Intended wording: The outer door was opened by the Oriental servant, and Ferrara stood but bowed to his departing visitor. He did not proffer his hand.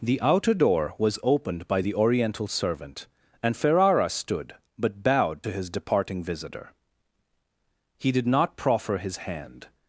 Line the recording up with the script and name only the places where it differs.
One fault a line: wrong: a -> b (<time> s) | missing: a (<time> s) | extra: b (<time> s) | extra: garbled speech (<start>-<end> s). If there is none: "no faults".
no faults